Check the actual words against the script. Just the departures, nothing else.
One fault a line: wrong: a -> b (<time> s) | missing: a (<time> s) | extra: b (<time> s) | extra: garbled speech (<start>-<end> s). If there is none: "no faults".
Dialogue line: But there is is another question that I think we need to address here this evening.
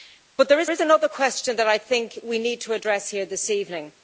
no faults